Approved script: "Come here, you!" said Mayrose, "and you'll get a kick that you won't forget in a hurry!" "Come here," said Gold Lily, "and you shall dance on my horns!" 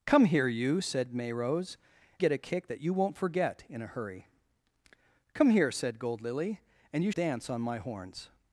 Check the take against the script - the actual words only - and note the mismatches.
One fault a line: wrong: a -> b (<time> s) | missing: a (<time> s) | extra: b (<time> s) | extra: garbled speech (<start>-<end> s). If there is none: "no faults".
missing: and you'll (1.8 s)
missing: shall (7.1 s)